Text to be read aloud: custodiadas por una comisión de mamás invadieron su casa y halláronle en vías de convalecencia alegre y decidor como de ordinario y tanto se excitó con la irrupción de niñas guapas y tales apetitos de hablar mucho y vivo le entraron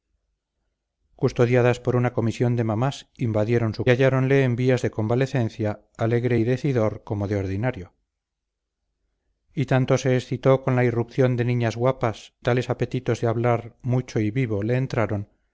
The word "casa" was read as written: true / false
false